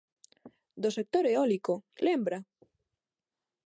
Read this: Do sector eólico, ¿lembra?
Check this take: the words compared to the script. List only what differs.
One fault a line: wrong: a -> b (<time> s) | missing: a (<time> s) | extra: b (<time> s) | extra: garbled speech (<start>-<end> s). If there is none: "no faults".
no faults